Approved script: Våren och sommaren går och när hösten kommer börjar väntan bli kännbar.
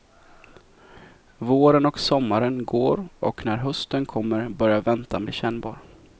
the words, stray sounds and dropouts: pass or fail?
pass